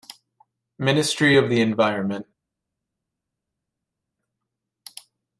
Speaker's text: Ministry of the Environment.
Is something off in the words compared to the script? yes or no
no